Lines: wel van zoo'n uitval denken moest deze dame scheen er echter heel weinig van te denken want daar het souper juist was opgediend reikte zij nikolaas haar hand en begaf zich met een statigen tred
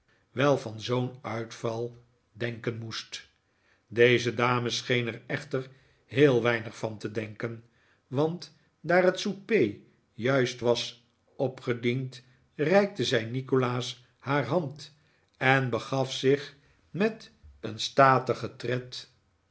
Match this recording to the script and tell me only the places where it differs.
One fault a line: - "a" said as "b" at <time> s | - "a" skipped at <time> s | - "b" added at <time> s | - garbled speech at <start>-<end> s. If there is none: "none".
none